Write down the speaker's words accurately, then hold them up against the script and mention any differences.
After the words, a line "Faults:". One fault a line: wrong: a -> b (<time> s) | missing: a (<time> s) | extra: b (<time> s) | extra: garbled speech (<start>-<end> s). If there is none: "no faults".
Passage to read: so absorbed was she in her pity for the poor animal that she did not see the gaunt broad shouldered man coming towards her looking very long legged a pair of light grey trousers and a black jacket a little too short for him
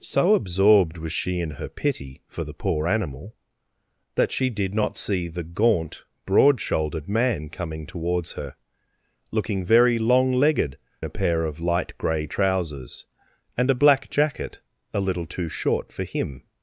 so absorbed was she in her pity for the poor animal that she did not see the gaunt broad shouldered man coming towards her looking very long legged a pair of light grey trousers and a black jacket a little too short for him
Faults:
no faults